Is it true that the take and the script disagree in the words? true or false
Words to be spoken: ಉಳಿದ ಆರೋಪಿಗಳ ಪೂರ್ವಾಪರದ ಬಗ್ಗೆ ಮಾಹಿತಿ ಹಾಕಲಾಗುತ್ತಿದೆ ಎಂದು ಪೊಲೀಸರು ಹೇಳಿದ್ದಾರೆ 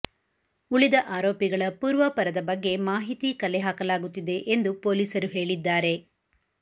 true